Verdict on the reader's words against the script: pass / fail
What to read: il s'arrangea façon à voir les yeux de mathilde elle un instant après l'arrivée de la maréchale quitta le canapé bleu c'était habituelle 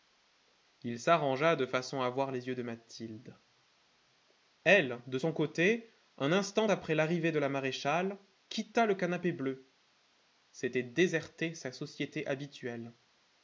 fail